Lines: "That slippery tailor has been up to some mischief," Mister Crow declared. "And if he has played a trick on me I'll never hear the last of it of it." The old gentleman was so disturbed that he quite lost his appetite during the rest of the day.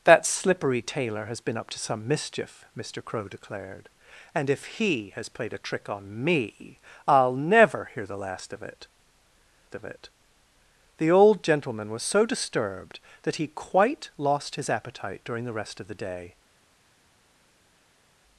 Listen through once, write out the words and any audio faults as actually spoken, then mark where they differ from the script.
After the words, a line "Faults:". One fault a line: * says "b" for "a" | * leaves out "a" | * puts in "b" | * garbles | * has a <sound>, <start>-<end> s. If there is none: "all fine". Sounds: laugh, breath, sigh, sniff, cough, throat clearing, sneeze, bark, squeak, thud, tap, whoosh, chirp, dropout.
"That slippery tailor has been up to some mischief," Mister Crow declared. "And if he has played a trick on me I'll never hear the last of it of it." The old gentleman was so disturbed that he quite lost his appetite during the rest of the day.
Faults:
all fine